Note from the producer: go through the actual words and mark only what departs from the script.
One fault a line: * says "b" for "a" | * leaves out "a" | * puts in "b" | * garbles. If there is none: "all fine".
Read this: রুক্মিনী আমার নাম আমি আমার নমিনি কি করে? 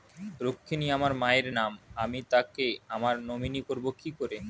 * puts in "মায়ের"
* puts in "তাকে"
* puts in "করবো"